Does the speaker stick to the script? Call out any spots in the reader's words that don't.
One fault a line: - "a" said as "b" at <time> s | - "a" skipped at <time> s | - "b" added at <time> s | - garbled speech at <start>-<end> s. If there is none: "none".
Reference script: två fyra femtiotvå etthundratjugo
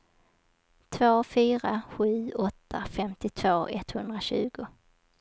- "sju åtta" added at 1.9 s